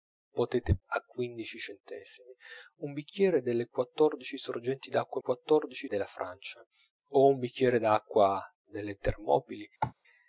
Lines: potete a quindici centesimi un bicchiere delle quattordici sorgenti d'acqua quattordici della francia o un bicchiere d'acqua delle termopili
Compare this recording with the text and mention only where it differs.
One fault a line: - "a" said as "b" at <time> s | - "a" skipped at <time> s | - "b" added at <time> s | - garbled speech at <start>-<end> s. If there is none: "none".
none